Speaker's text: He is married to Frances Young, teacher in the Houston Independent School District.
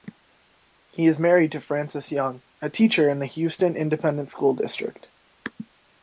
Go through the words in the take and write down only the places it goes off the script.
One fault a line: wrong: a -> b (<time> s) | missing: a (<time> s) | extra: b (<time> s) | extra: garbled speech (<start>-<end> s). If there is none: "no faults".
extra: a (2.6 s)